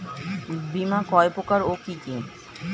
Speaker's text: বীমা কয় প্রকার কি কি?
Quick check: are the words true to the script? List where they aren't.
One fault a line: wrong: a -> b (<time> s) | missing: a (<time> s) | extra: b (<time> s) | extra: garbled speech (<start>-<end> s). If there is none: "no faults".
no faults